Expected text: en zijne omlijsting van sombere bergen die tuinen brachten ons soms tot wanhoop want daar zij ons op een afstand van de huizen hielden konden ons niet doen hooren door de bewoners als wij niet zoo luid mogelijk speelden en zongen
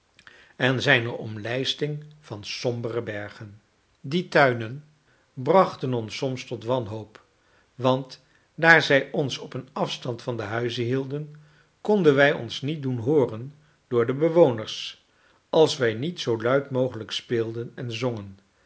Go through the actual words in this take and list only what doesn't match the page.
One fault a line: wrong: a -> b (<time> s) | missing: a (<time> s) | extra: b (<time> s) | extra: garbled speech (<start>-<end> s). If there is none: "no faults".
extra: wij (12.2 s)